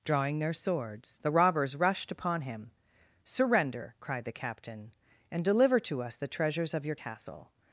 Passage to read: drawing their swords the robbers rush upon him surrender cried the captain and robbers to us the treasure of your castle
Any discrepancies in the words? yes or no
yes